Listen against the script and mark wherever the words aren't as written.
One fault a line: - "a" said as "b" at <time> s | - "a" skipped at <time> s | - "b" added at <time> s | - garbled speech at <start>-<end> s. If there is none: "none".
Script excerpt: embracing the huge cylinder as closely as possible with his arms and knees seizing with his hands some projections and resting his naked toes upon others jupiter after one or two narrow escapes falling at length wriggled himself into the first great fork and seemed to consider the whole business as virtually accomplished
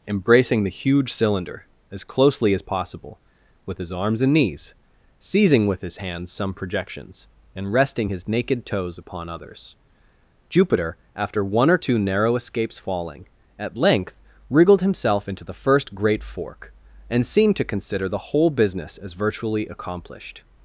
none